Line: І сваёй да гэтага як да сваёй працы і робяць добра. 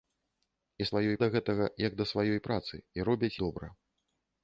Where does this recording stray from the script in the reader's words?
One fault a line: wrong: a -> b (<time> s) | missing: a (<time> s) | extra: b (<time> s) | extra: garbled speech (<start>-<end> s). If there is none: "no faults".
no faults